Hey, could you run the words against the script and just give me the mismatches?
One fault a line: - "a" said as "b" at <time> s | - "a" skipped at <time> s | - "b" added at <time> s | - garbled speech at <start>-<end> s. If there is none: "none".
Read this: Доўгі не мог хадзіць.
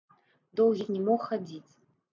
none